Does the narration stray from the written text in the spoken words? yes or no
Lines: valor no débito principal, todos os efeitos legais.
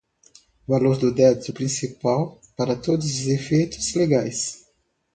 yes